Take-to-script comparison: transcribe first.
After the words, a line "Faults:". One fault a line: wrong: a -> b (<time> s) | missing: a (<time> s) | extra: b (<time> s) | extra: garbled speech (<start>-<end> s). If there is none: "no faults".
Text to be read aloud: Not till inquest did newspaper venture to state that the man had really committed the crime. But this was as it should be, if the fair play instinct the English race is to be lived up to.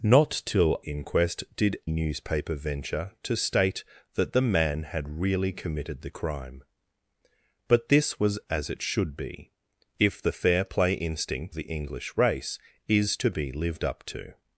Not till inquest did newspaper venture to state that the man had really committed the crime. But this was as it should be, if the fair play instinct the English race is to be lived up to.
Faults:
no faults